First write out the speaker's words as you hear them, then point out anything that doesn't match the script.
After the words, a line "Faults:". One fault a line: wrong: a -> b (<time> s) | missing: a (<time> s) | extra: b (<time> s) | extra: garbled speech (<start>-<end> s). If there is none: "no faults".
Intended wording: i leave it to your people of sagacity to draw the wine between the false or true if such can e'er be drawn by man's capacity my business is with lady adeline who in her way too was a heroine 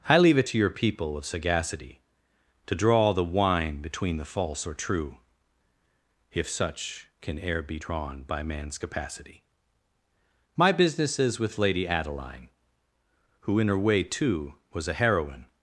i leave it to your people of sagacity to draw the wine between the false or true if such can e'er be drawn by man's capacity my business is with lady adeline who in her way too was a heroine
Faults:
no faults